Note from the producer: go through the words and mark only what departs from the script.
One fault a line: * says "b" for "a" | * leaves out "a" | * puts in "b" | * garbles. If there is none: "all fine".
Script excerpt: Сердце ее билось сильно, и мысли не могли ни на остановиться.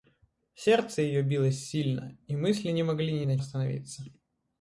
all fine